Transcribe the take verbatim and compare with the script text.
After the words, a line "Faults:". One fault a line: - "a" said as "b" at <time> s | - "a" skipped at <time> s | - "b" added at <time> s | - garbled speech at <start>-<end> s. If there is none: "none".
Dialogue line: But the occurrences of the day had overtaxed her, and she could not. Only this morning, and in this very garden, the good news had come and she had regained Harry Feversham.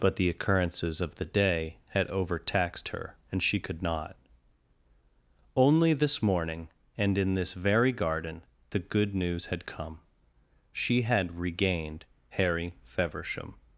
But the occurrences of the day had overtaxed her, and she could not. Only this morning, and in this very garden, the good news had come she had regained Harry Feversham.
Faults:
- "and" skipped at 10.0 s